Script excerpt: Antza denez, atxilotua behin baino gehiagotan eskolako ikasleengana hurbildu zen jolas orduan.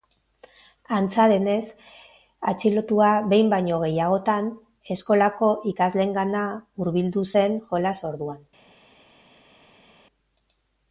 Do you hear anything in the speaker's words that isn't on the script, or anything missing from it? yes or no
no